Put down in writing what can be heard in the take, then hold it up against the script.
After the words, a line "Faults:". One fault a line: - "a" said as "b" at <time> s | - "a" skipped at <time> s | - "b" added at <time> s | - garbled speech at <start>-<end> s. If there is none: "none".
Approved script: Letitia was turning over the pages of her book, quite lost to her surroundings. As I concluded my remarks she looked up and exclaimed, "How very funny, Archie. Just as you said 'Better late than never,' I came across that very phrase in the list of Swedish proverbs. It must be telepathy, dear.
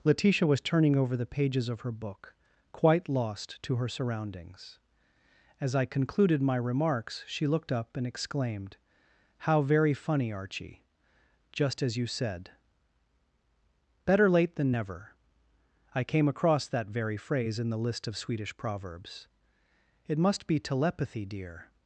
Letitia was turning over the pages of her book, quite lost to her surroundings. As I concluded my remarks she looked up and exclaimed, "How very funny, Archie. Just as you said 'Better late than never,' I came across that very phrase in the list of Swedish proverbs. It must be telepathy, dear.
Faults:
none